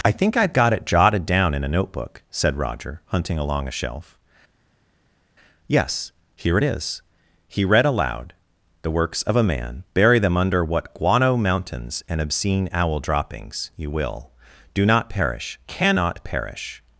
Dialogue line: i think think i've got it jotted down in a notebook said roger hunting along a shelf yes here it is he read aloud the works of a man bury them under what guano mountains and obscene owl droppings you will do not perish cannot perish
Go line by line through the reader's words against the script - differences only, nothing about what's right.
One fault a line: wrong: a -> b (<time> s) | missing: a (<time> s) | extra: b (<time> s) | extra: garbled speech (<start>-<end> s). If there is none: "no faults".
missing: think (0.3 s)